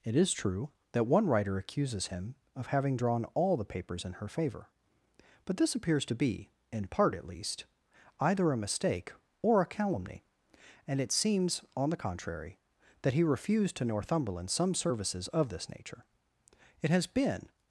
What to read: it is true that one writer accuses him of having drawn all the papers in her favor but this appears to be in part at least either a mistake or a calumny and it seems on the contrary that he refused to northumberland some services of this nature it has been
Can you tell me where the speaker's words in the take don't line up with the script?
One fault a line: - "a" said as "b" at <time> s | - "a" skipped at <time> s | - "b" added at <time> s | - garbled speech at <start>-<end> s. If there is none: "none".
none